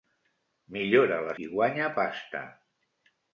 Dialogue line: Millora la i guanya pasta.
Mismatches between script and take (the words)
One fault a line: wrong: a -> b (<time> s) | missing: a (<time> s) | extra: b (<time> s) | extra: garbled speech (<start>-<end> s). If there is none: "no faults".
no faults